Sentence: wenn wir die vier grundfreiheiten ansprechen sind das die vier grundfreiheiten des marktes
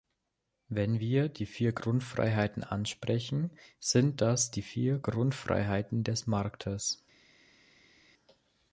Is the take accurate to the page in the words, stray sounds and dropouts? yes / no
yes